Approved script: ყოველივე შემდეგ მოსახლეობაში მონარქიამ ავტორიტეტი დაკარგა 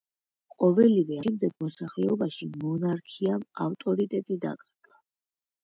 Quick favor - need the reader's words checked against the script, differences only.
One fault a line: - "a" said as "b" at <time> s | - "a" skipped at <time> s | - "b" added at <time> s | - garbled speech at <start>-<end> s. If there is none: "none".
none